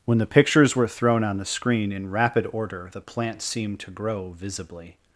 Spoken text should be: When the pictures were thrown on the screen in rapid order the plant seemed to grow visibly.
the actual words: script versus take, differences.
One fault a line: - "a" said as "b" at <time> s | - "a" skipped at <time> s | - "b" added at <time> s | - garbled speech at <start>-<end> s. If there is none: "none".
none